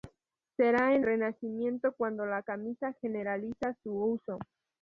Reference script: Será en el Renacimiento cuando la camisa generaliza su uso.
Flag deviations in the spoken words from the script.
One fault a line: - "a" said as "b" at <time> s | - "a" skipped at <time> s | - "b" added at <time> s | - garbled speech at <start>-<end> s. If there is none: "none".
- "el" skipped at 1.1 s